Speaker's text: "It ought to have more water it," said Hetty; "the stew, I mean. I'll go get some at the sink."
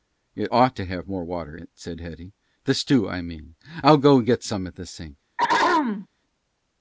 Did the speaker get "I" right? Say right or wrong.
right